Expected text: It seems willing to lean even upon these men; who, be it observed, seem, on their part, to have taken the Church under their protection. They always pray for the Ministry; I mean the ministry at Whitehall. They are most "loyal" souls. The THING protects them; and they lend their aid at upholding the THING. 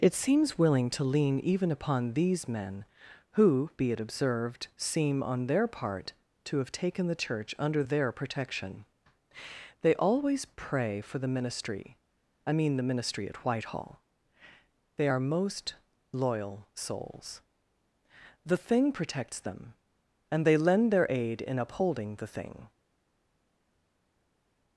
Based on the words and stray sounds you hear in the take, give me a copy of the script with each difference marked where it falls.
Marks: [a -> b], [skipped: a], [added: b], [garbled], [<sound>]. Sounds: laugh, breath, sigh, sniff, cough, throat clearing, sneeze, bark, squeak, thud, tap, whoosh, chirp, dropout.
It seems willing to lean even upon these men; who, be it observed, seem, on their part, to have taken the Church under their protection. They always pray for the Ministry; I mean the ministry at Whitehall. They are most "loyal" souls. The THING protects them; and they lend their aid [at -> in] upholding the THING.